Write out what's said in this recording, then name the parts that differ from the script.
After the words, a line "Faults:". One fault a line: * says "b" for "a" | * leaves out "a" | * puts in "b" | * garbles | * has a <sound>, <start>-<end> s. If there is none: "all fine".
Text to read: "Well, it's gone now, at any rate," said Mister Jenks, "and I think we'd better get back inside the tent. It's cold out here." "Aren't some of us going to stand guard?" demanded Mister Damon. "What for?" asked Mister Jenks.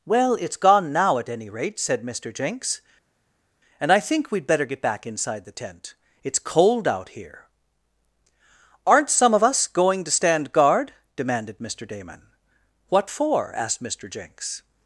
"Well, it's gone now, at any rate," said Mister Jenks, "and I think we'd better get back inside the tent. It's cold out here." "Aren't some of us going to stand guard?" demanded Mister Damon. "What for?" asked Mister Jenks.
Faults:
all fine